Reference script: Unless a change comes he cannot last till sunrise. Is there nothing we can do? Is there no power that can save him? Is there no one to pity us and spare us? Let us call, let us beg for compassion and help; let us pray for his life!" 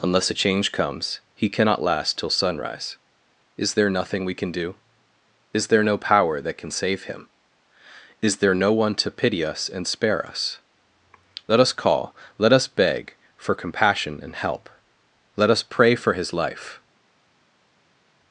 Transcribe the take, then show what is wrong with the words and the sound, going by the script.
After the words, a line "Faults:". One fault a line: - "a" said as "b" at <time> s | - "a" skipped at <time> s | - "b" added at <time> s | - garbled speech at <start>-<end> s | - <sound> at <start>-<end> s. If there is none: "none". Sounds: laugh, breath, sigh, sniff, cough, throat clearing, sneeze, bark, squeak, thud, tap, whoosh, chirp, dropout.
Unless a change comes he cannot last till sunrise. Is there nothing we can do? Is there no power that can save him? Is there no one to pity us and spare us? Let us call, let us beg for compassion and help; let us pray for his life!"
Faults:
none